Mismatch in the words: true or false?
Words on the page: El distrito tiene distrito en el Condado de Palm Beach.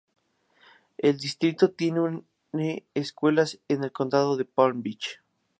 true